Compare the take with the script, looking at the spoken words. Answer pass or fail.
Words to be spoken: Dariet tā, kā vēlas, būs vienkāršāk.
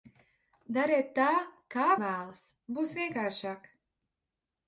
pass